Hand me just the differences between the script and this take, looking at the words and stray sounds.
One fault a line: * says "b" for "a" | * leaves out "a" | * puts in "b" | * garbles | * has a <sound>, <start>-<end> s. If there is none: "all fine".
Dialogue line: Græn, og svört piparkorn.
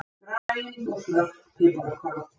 * has a dropout, 0.4-0.5 s